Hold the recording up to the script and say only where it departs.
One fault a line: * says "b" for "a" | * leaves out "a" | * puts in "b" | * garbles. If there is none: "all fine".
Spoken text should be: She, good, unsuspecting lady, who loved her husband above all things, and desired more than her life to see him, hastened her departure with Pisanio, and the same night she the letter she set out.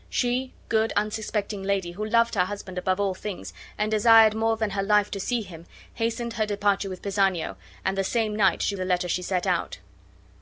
all fine